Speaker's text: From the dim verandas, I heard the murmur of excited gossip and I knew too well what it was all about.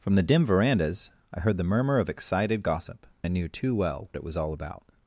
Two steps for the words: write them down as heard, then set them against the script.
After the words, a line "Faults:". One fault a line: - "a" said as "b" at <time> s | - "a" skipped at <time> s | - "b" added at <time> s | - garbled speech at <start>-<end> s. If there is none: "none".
From the dim verandas, I heard the murmur of excited gossip I knew too well it was all about.
Faults:
- "and" skipped at 3.1 s
- "what" skipped at 4.1 s